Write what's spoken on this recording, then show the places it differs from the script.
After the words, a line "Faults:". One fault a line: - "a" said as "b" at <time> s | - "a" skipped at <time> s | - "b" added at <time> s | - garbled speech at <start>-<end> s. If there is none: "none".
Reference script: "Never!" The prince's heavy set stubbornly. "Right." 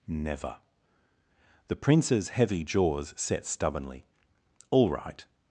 "Never!" The prince's heavy jaws set stubbornly. "All right."
Faults:
- "jaws" added at 2.6 s
- "All" added at 4.7 s